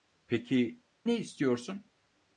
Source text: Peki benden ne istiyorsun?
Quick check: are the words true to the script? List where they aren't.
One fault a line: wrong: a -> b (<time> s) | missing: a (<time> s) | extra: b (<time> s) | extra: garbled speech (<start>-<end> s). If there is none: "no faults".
missing: benden (0.8 s)